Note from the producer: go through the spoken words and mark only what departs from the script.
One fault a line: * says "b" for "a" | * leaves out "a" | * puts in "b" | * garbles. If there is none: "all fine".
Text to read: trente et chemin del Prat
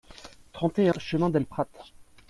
all fine